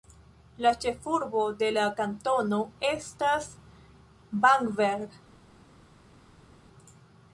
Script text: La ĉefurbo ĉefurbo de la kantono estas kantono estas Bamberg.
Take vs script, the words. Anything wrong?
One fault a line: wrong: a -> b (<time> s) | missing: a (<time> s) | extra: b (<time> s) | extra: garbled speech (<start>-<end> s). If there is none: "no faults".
missing: ĉefurbo (1.4 s)
missing: kantono estas (3.5 s)